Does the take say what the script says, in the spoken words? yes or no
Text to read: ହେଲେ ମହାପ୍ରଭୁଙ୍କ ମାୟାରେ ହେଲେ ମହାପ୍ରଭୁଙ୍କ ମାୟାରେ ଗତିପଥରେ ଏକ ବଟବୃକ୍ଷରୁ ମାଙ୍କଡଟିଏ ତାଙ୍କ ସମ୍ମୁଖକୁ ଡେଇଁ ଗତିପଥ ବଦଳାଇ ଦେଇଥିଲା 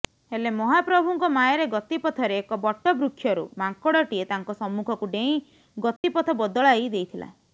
no